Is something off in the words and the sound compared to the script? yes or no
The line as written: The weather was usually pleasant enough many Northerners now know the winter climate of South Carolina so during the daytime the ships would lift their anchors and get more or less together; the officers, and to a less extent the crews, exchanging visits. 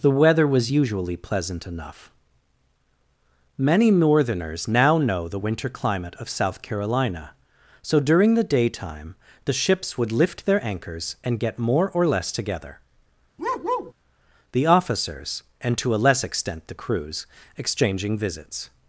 yes